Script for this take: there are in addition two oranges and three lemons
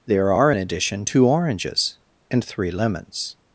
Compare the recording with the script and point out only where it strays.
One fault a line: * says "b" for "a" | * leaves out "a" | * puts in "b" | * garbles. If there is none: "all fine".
all fine